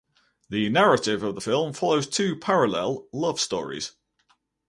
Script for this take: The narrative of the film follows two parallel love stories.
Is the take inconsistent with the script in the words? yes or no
no